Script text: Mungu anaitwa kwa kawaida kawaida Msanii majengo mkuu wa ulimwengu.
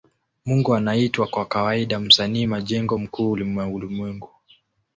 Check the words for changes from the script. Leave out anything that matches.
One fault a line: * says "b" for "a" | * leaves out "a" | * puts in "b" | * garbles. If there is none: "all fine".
* leaves out "kawaida"